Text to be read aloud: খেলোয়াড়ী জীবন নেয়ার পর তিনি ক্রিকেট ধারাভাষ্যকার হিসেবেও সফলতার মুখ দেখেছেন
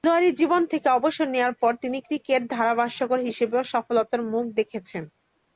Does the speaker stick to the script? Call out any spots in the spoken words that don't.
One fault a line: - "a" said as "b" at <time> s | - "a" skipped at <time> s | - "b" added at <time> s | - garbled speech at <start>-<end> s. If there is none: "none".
- "থেকে অবসর" added at 0.7 s